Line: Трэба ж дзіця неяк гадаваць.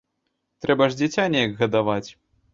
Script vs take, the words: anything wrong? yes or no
no